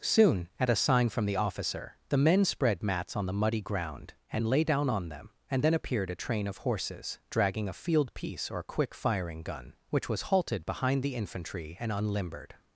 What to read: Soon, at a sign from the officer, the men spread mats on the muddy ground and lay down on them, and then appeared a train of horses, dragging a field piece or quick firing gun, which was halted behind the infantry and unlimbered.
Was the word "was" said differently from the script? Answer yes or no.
no